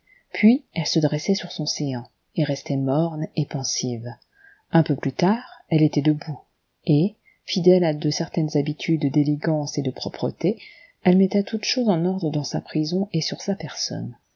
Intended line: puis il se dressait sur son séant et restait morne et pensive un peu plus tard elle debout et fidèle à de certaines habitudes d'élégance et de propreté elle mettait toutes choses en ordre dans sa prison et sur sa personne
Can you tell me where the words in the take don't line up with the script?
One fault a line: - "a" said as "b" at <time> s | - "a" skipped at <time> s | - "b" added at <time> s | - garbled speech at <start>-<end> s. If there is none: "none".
- "il" said as "elle" at 0.7 s
- "était" added at 5.8 s